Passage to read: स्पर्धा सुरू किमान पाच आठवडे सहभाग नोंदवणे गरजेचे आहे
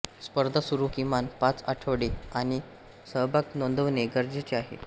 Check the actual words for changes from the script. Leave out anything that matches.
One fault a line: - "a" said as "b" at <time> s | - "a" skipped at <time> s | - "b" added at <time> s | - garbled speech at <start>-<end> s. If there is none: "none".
none